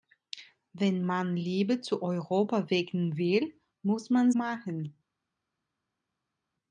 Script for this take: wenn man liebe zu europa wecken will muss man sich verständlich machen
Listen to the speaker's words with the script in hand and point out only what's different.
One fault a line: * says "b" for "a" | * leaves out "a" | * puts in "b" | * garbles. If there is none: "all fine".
* leaves out "sich verständlich"